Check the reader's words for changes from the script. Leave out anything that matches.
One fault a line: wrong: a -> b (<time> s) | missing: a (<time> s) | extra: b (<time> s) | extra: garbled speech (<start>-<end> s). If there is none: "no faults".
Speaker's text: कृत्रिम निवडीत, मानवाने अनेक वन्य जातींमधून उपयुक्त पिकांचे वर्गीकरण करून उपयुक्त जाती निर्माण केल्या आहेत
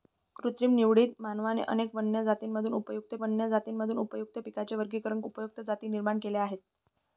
extra: वन्य जातींमधून उपयुक्त (3.2 s)
missing: करून (5.2 s)